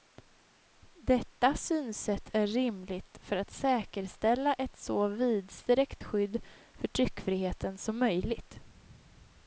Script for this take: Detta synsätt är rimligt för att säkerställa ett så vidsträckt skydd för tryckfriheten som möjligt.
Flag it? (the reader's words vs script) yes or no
no